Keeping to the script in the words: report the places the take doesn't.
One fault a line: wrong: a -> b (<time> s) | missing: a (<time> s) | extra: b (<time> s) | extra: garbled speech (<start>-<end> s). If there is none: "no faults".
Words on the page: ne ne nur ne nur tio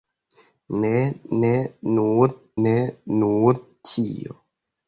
no faults